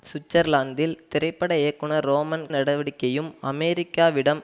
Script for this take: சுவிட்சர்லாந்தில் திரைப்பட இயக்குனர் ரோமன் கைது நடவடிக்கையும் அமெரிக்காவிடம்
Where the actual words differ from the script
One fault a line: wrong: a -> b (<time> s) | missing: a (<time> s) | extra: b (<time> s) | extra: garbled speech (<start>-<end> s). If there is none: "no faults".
missing: கைது (2.5 s)